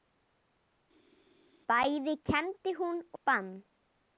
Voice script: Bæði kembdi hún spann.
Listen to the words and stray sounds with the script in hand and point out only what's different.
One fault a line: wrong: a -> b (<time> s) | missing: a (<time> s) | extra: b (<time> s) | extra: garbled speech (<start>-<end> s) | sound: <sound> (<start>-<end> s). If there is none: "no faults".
no faults